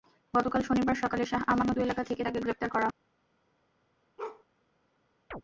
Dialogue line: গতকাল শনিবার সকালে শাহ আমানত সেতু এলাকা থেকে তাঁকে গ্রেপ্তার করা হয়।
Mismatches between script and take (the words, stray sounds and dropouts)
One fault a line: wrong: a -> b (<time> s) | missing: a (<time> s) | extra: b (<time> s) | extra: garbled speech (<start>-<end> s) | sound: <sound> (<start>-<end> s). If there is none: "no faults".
missing: সেতু (1.8 s)
sound: bark (4.2-4.4 s)
sound: chirp (5.3-5.4 s)